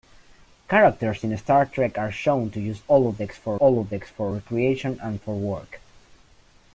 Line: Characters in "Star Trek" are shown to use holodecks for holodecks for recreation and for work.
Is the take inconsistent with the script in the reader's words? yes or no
no